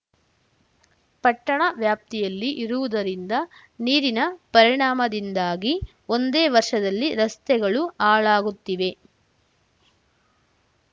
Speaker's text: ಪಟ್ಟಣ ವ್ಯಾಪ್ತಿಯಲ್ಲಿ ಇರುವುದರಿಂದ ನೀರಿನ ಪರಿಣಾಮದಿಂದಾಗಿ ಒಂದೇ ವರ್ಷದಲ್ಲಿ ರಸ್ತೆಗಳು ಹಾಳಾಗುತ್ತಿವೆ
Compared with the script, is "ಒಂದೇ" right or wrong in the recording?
right